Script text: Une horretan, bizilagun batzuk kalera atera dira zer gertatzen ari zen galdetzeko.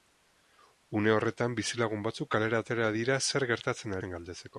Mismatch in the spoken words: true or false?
true